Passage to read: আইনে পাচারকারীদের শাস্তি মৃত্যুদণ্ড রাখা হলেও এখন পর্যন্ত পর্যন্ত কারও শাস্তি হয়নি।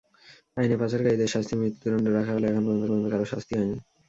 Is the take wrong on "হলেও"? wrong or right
right